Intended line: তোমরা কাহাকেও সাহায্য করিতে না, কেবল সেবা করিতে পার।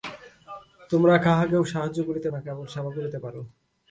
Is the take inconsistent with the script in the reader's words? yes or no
no